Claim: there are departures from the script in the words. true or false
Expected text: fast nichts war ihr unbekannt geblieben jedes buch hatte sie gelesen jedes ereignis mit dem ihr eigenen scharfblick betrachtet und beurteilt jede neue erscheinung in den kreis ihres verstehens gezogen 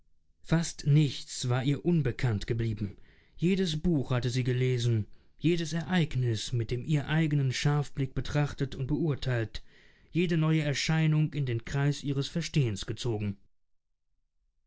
false